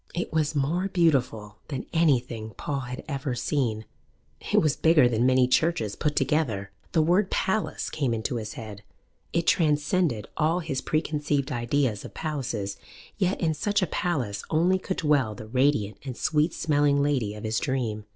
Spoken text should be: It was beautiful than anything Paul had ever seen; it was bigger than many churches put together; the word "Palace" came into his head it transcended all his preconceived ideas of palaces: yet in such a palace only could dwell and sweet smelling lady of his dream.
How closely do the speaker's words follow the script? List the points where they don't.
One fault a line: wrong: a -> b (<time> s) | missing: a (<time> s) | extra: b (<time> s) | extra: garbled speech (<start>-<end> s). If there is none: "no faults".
extra: more (0.6 s)
extra: the radiant (15.3 s)